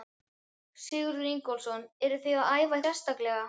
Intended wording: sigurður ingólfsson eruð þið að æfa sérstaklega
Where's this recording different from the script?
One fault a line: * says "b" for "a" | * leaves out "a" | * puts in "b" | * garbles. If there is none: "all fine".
all fine